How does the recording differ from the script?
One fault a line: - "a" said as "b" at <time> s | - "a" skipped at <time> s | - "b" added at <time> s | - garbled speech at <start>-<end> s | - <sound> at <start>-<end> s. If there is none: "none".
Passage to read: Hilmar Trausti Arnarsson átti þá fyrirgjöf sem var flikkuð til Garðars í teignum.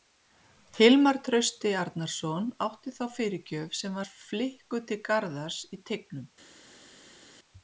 none